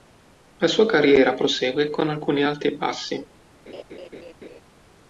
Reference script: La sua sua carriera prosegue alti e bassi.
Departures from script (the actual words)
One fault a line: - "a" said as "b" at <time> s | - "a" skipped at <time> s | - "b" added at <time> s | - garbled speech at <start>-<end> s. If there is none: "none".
- "sua" skipped at 0.9 s
- "con alcuni" added at 1.9 s